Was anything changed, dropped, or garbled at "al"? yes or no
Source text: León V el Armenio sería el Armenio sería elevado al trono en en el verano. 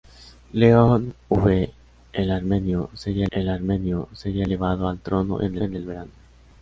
no